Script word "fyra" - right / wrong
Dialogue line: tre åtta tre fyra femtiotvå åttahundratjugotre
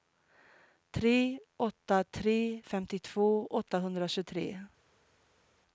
wrong